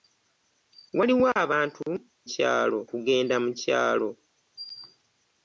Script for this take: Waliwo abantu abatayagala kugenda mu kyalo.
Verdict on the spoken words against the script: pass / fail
fail